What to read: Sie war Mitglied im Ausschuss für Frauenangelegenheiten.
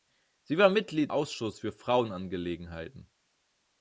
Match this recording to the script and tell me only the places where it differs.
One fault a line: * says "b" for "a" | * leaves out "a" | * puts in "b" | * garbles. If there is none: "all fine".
* leaves out "im"